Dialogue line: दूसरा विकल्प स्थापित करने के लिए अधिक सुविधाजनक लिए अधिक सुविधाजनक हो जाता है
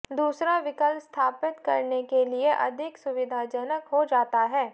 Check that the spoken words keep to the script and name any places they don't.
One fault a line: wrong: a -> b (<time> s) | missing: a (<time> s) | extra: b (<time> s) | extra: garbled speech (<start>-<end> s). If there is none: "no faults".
missing: लिए अधिक सुविधाजनक (3.9 s)